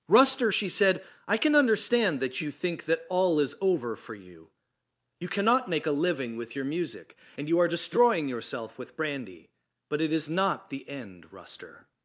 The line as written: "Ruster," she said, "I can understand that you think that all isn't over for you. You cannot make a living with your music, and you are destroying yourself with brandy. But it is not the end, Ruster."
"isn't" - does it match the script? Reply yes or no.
no